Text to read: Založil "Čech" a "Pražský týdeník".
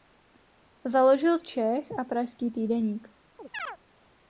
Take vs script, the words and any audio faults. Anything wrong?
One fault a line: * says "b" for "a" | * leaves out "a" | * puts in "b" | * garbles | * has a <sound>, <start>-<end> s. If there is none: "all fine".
* has a chirp, 3.4-3.8 s